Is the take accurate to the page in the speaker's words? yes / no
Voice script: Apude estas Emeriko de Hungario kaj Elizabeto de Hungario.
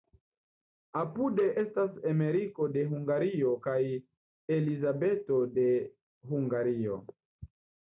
yes